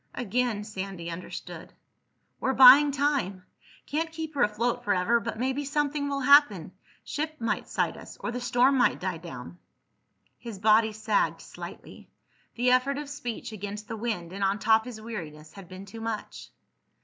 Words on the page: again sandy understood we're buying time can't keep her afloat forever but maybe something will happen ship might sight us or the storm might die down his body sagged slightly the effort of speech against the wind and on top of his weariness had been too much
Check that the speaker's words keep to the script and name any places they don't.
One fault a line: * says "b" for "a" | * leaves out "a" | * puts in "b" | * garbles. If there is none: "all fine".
* leaves out "of"